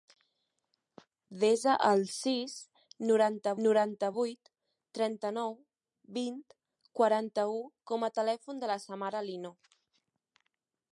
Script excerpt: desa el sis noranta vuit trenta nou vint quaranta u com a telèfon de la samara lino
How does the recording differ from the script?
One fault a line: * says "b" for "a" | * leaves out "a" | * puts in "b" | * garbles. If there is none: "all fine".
* puts in "noranta"